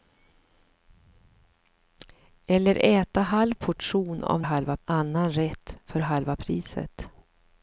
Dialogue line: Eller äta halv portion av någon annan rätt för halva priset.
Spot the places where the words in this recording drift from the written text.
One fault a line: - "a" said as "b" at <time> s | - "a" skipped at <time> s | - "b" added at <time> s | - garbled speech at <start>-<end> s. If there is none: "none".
- "någon" said as "halva" at 4.4 s